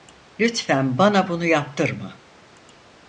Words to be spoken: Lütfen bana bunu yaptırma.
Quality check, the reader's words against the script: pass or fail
pass